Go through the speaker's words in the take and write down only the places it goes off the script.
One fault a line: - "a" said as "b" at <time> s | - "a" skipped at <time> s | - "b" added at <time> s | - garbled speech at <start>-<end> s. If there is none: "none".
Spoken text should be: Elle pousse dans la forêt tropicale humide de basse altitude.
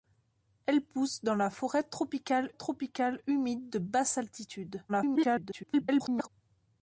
- "tropicale" added at 2.5 s
- garbled speech at 4.9-6.3 s